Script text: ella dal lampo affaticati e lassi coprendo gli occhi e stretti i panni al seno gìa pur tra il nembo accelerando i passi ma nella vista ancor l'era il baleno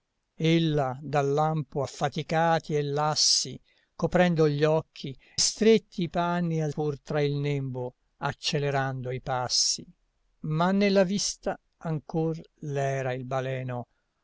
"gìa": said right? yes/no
no